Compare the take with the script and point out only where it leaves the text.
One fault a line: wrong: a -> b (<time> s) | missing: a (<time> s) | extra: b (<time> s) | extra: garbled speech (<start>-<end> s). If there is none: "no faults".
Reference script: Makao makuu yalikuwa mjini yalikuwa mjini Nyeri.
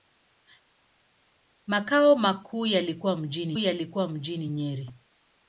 no faults